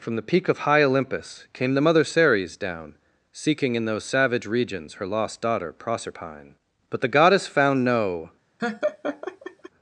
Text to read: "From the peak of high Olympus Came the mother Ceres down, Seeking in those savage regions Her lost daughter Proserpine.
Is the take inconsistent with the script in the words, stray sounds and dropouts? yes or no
yes